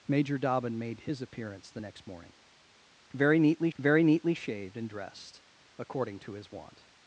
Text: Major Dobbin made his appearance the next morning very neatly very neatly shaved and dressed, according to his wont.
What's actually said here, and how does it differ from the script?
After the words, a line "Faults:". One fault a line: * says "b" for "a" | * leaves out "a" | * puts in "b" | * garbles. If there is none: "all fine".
Major Dobbin made his appearance the next morning very neatly very neatly shaved and dressed, according to his wont.
Faults:
all fine